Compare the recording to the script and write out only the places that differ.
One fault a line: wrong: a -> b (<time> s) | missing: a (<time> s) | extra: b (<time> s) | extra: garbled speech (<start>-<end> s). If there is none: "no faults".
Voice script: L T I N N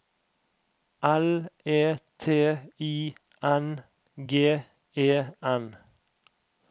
extra: E (1.6 s)
extra: G E (4.3 s)